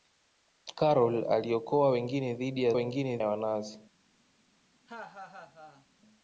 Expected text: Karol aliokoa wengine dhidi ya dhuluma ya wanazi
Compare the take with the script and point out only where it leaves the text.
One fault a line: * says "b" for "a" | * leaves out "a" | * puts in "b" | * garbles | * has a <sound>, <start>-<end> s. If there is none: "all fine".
* says "wengine" for "dhuluma"
* has a laugh, 4.9-5.9 s